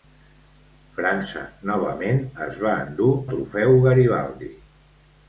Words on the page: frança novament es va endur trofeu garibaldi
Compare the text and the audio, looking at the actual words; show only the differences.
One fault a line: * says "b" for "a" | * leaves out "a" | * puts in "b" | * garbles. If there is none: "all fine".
all fine